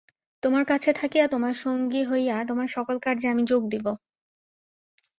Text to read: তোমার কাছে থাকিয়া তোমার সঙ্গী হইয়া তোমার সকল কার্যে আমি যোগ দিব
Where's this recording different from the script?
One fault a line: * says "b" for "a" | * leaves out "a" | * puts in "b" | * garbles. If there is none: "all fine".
all fine